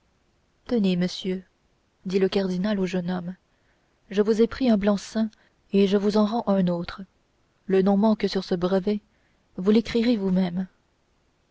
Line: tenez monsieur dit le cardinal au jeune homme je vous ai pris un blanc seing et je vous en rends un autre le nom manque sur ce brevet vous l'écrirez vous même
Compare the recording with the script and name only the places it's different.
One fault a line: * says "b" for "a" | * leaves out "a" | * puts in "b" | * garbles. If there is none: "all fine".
all fine